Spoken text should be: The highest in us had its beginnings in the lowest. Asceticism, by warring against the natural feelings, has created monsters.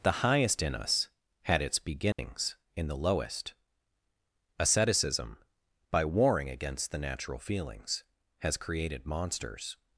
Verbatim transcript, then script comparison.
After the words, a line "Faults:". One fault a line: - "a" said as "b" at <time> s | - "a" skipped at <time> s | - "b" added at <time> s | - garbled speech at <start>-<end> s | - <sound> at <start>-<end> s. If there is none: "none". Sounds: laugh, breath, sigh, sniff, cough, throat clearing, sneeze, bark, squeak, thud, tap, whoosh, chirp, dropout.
The highest in us had its beginnings in the lowest. Asceticism, by warring against the natural feelings, has created monsters.
Faults:
- dropout at 2.1-2.2 s